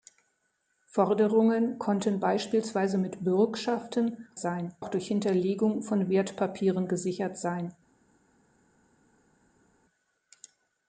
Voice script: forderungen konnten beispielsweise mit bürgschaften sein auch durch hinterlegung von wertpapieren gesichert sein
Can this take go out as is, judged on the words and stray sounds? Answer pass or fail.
pass